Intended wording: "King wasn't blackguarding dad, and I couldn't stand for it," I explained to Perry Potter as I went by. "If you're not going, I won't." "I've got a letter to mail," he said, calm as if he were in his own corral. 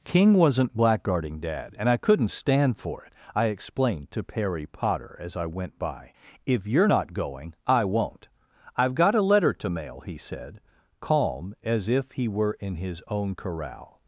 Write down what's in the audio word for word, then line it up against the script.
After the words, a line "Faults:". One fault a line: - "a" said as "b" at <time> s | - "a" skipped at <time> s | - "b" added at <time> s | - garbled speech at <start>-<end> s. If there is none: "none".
"King wasn't blackguarding dad, and I couldn't stand for it," I explained to Perry Potter as I went by. "If you're not going, I won't." "I've got a letter to mail," he said, calm as if he were in his own corral.
Faults:
none